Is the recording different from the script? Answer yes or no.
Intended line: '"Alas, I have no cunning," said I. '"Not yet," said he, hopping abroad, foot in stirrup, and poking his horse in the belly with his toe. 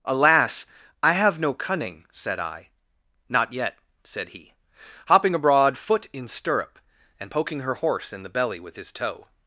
yes